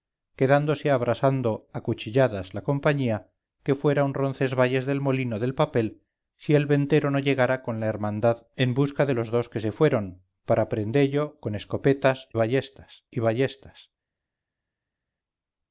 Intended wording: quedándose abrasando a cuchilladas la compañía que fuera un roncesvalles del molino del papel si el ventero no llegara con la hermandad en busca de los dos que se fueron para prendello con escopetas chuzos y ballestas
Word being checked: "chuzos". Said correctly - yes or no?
no